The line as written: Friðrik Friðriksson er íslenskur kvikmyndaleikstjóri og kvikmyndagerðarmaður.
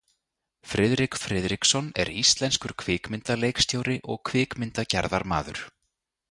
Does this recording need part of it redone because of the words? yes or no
no